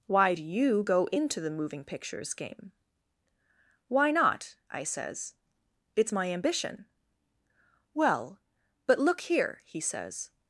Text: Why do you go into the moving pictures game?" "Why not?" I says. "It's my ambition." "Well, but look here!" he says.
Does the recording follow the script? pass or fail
pass